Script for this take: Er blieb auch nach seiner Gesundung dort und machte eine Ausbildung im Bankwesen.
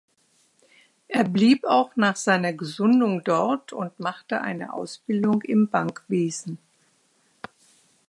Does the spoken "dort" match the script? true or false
true